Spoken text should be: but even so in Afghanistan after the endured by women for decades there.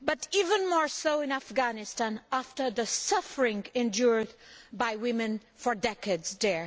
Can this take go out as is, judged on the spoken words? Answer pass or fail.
fail